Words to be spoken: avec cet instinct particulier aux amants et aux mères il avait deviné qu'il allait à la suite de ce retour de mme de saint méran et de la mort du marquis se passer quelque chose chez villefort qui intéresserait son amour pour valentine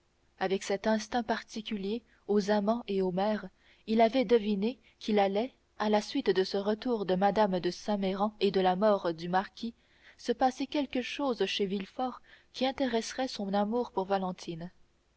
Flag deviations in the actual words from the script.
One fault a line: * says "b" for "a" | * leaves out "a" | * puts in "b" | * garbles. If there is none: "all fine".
all fine